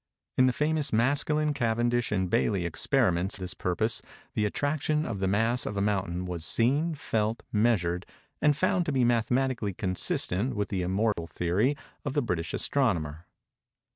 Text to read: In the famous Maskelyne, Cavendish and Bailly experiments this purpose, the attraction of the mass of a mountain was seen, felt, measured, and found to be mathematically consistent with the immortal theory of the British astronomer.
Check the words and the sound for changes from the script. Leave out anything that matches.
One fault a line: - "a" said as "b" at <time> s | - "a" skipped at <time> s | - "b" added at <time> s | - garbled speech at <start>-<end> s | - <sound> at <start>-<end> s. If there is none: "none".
- dropout at 11.1-11.2 s